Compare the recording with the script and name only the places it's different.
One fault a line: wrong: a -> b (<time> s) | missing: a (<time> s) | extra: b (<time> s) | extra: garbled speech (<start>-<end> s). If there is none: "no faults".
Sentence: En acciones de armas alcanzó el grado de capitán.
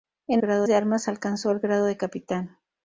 wrong: acciones -> grado (0.4 s)